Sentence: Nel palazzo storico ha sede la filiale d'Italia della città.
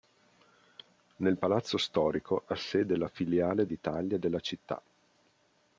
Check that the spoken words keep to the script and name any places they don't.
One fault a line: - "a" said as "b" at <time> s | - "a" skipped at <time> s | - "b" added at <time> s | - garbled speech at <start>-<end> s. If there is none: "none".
none